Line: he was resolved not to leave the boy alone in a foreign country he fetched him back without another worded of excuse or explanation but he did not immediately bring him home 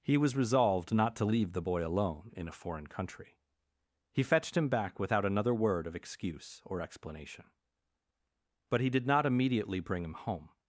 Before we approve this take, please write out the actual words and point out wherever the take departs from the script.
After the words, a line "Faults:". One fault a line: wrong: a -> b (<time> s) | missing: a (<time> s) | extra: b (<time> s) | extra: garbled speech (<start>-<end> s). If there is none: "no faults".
he was resolved not to leave the boy alone in a foreign country he fetched him back without another word of excuse or explanation but he did not immediately bring him home
Faults:
wrong: worded -> word (5.5 s)